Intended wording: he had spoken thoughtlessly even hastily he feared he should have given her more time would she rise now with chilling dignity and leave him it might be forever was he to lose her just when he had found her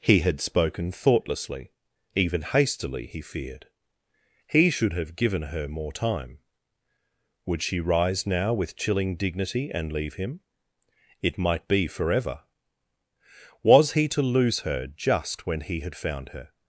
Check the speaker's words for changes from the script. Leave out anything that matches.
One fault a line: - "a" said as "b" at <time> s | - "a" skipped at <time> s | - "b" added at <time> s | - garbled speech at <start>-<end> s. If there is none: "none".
none